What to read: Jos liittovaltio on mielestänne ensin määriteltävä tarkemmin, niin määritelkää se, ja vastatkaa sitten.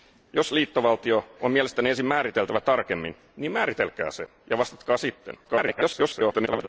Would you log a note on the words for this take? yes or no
yes